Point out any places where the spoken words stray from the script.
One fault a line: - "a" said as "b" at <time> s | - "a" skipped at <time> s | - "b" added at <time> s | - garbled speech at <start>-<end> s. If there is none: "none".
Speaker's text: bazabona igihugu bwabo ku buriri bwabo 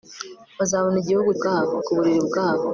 none